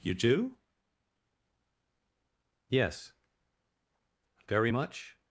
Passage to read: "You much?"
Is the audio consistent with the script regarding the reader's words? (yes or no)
no